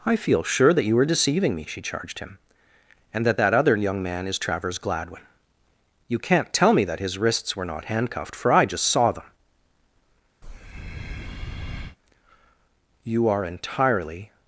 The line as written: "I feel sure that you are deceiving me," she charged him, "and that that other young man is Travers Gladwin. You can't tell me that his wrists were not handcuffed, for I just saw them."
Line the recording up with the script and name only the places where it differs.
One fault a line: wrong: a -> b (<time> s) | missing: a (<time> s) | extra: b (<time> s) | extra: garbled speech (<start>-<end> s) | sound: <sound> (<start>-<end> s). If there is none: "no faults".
sound: breath (10.4-12.0 s)
extra: You are entirely (13.0 s)